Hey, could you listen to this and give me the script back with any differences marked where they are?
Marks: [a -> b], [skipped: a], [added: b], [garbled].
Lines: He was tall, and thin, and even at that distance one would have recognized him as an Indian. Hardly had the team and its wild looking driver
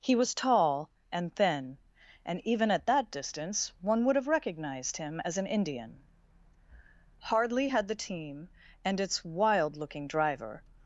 He was tall, and thin, and even at that distance one would have recognized him as an Indian. Hardly had the team and its wild looking driver